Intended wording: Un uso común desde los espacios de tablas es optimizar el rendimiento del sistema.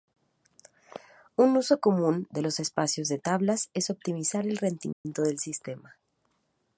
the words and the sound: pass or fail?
fail